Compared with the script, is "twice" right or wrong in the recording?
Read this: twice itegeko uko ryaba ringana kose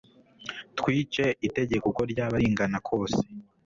right